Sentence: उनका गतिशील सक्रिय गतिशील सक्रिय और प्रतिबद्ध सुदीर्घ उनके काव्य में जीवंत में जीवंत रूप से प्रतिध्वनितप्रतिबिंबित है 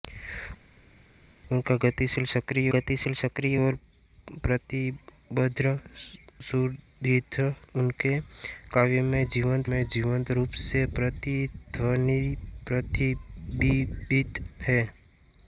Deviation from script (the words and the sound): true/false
false